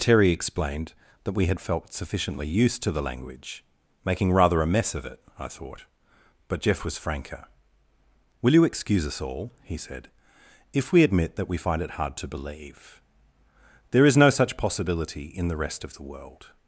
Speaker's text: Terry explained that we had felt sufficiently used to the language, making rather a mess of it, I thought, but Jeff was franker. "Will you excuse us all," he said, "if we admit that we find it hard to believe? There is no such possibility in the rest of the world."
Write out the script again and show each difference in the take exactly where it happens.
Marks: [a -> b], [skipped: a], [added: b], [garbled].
Terry explained that we had felt sufficiently used to the language, making rather a mess of it, I thought, but Jeff was franker. "Will you excuse us all," he said, "if we admit that we find it hard to believe? There is no such possibility in the rest of the world."